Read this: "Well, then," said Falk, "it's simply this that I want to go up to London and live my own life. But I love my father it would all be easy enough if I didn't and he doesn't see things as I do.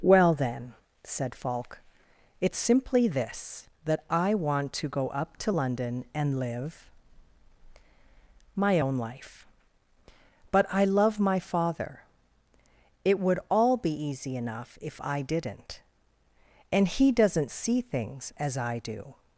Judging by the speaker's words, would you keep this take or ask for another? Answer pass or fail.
pass